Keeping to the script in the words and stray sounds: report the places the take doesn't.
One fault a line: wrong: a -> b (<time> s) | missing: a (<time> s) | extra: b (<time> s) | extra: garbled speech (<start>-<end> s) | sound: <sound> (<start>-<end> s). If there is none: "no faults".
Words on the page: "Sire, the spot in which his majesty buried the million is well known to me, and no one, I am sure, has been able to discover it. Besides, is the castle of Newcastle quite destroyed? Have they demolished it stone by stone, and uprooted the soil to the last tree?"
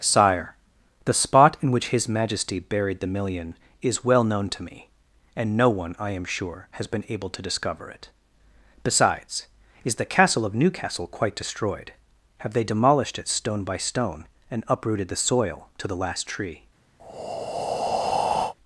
sound: breath (17.0-18.5 s)